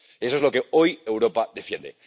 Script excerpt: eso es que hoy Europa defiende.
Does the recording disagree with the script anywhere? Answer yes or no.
yes